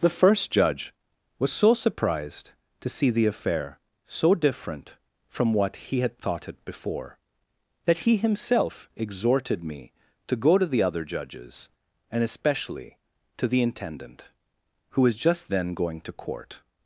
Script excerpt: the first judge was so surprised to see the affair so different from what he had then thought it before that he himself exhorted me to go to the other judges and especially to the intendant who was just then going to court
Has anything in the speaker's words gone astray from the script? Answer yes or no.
yes